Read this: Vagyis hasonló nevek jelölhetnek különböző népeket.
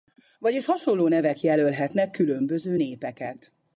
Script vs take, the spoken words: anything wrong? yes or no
no